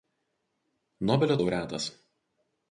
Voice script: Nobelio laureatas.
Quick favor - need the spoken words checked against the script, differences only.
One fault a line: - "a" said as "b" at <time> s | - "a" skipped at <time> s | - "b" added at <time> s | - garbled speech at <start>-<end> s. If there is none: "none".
none